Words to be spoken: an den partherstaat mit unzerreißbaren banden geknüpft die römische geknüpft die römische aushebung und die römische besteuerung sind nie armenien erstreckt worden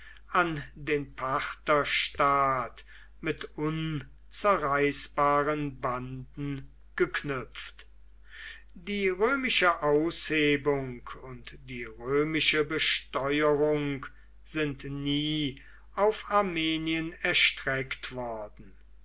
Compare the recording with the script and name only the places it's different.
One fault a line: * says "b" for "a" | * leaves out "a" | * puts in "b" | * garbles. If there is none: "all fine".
* leaves out "geknüpft die römische"
* puts in "auf"